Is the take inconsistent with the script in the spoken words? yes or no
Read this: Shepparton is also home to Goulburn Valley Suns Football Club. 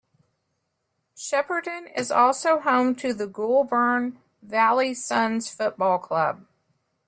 yes